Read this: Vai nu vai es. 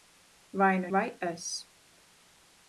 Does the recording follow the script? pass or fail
pass